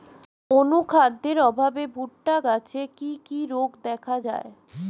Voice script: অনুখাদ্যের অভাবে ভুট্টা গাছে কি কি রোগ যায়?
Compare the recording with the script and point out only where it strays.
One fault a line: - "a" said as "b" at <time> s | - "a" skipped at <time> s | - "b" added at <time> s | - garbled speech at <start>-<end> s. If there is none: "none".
- "দেখা" added at 3.9 s